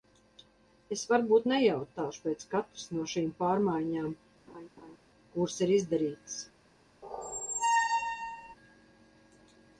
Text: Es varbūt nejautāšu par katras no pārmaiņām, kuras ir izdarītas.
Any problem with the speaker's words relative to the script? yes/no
yes